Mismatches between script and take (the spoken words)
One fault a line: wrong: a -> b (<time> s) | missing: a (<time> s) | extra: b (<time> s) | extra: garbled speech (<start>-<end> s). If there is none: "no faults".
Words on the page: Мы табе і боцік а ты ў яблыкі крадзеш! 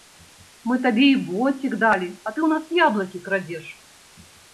extra: далі (1.8 s)
extra: нас (2.5 s)